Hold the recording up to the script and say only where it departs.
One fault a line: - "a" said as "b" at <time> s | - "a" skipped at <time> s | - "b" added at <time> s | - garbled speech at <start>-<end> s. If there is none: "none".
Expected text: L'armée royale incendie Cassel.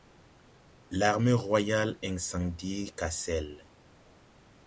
none